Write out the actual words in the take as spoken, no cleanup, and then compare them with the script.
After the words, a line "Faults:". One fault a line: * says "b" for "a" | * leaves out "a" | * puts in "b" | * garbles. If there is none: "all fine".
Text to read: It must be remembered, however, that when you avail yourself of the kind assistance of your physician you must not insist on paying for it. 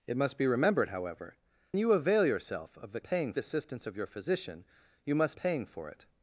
It must be remembered, however, you avail yourself of the paying assistance of your physician you must paying for it.
Faults:
* leaves out "that when"
* says "paying" for "kind"
* leaves out "not insist on"